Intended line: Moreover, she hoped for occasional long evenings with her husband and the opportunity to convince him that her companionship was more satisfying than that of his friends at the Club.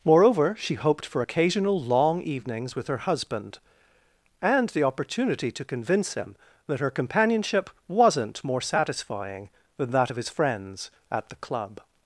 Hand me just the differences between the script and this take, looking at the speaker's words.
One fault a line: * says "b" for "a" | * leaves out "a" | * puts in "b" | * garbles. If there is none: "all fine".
* says "wasn't" for "was"